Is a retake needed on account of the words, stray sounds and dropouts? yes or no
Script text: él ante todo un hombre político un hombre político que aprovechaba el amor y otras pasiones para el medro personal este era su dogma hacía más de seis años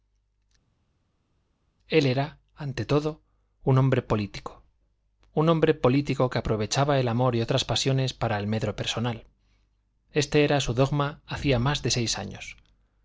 yes